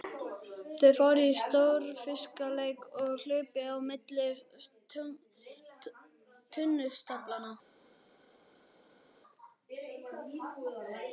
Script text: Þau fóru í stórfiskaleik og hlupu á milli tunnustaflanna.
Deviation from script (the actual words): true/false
false